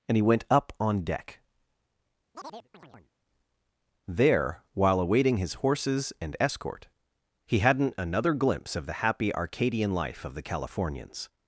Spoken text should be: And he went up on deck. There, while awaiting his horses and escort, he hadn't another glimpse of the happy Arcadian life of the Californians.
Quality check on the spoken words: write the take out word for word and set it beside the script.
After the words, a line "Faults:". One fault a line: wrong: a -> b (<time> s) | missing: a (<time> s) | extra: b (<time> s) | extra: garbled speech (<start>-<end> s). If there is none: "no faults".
And he went up on deck. There, while awaiting his horses and escort, he hadn't another glimpse of the happy Arcadian life of the Californians.
Faults:
no faults